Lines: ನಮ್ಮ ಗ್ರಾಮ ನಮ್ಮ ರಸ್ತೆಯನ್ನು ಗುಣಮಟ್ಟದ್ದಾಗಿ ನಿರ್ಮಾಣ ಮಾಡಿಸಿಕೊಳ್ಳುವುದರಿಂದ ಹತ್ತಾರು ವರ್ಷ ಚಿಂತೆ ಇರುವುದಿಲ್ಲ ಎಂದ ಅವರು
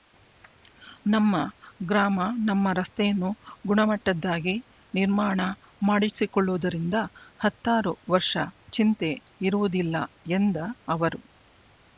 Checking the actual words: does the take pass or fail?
pass